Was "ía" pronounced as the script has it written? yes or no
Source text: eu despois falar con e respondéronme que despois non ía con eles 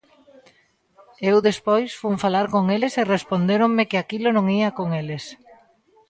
yes